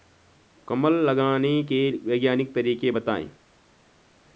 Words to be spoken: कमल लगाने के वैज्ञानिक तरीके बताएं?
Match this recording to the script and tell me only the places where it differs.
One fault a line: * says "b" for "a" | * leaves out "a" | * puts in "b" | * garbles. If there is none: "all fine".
all fine